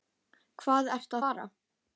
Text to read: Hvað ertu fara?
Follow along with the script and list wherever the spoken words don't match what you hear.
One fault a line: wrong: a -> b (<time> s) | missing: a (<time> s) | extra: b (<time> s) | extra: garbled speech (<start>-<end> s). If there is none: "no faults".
no faults